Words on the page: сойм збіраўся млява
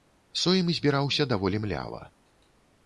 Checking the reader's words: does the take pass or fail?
fail